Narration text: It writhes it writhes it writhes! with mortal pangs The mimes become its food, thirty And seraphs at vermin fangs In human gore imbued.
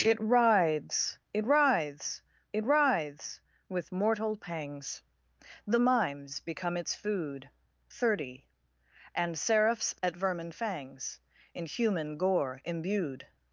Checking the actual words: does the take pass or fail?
pass